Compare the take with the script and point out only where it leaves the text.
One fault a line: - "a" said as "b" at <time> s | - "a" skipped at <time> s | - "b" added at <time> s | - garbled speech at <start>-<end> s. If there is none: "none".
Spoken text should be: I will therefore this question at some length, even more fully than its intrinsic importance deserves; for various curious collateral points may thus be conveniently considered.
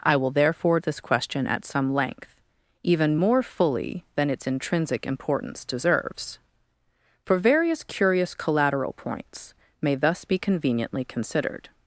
none